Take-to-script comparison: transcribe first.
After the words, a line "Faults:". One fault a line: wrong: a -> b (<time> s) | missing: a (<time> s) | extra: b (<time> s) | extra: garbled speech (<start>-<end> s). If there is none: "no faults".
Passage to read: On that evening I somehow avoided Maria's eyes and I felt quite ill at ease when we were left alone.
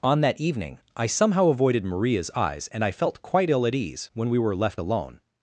On that evening I somehow avoided Maria's eyes and I felt quite ill at ease when we were left alone.
Faults:
no faults